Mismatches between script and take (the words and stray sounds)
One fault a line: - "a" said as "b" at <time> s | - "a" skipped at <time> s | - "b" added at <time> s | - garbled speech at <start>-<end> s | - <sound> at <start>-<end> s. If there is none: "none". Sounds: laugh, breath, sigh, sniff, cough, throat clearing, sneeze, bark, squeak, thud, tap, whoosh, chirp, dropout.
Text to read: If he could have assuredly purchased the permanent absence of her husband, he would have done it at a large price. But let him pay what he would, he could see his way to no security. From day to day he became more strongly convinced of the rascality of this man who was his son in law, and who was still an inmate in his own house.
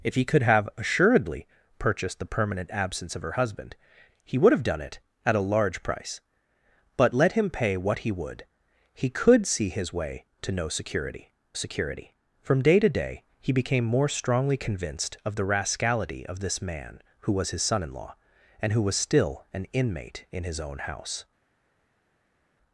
- "security" added at 11.5 s